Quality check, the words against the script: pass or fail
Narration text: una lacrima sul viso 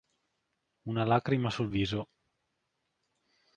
pass